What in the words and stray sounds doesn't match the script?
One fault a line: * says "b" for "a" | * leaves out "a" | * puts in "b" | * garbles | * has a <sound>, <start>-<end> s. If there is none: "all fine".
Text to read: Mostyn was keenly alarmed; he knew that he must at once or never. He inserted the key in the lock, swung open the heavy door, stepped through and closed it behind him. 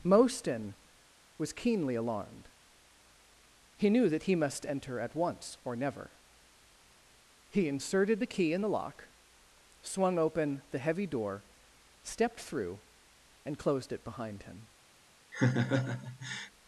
* puts in "enter"
* has a laugh, 15.3-16.5 s